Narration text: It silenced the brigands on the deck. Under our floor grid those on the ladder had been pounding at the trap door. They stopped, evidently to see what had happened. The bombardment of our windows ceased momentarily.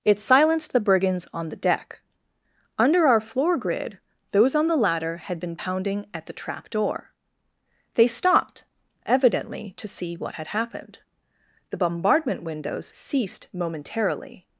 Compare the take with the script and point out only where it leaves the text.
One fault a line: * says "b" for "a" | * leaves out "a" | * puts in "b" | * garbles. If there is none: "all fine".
* leaves out "of our"